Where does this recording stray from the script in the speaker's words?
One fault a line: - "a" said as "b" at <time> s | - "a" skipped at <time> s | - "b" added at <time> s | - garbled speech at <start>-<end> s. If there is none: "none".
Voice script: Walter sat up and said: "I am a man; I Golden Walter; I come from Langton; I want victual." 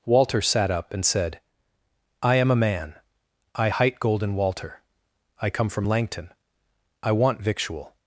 - "hight" added at 3.7 s